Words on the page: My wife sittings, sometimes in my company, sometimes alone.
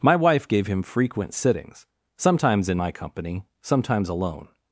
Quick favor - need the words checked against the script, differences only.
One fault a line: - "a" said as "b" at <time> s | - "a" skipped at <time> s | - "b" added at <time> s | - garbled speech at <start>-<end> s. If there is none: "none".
- "gave him frequent" added at 0.5 s